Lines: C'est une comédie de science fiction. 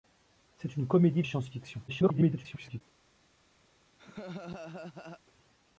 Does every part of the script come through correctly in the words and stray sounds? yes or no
no